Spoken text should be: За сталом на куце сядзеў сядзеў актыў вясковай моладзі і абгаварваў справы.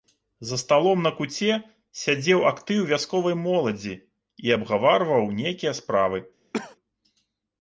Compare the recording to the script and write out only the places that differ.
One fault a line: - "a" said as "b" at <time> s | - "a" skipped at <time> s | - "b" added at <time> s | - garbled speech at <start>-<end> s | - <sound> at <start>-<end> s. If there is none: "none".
- "сядзеў" skipped at 2.4 s
- "нейкія" added at 5.4 s
- cough at 6.5-6.8 s